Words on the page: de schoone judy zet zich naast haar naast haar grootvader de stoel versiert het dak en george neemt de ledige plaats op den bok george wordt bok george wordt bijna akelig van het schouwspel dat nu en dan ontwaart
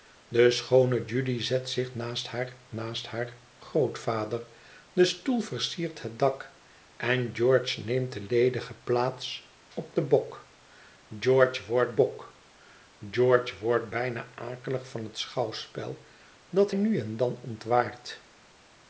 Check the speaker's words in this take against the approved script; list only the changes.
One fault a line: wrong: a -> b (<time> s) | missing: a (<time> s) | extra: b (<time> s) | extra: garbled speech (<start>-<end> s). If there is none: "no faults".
no faults